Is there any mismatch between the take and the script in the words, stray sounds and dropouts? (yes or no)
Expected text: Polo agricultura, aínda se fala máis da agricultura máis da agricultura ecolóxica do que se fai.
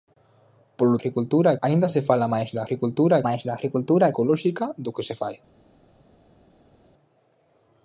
no